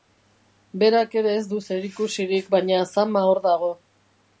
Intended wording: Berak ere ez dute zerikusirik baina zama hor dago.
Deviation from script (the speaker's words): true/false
true